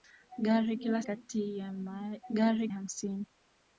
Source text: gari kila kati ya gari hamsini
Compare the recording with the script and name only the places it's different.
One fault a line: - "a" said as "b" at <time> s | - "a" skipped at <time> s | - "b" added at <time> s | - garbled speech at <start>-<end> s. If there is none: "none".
none